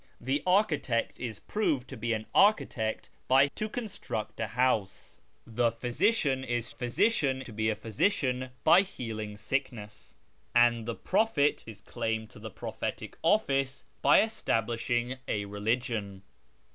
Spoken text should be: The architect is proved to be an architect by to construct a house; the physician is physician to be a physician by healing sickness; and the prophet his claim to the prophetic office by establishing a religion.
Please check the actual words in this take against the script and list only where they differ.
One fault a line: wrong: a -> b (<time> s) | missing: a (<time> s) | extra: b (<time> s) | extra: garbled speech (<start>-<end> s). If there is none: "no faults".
no faults